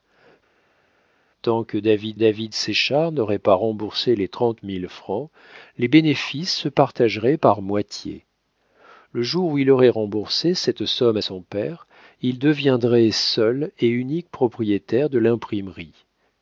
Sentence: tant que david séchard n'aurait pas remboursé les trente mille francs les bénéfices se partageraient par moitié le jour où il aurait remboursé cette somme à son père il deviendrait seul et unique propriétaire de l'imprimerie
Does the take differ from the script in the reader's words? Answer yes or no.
yes